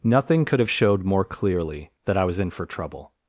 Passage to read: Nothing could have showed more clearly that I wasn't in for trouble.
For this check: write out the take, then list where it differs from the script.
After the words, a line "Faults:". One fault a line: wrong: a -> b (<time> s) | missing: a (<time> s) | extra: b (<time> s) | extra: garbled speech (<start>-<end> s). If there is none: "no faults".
Nothing could have showed more clearly that I was in for trouble.
Faults:
wrong: wasn't -> was (2.2 s)